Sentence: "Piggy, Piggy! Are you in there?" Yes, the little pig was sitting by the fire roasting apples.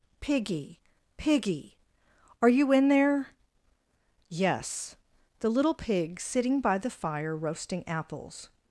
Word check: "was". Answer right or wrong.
wrong